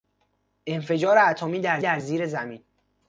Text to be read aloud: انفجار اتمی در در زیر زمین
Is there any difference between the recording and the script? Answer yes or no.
no